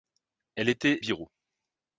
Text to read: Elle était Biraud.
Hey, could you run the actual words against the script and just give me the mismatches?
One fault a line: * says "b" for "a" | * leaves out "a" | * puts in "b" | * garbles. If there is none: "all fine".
all fine